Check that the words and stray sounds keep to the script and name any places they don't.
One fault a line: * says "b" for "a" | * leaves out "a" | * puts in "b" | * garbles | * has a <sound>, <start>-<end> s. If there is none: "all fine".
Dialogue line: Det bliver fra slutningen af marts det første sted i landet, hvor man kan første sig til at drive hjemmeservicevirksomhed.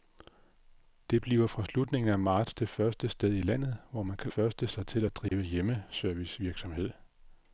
* has a dropout, 5.3-5.3 s